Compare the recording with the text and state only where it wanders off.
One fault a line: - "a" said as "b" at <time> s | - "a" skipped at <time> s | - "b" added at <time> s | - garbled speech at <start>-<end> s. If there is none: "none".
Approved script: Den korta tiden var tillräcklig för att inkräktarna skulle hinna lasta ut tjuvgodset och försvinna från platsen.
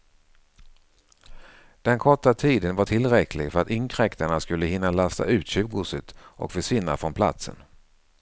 none